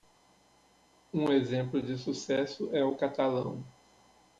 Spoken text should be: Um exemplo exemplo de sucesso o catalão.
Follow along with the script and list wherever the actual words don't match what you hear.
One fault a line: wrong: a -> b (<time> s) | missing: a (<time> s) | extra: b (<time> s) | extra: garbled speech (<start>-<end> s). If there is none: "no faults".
missing: exemplo (1.8 s)
extra: é (2.7 s)